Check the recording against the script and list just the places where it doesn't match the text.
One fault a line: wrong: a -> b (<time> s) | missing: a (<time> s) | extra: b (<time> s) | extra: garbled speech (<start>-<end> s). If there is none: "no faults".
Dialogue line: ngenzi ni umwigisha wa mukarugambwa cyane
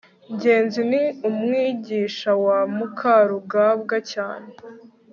no faults